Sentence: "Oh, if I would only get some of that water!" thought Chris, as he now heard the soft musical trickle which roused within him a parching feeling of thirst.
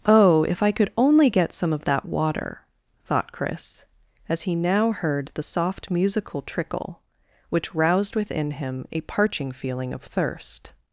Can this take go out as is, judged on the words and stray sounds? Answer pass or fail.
fail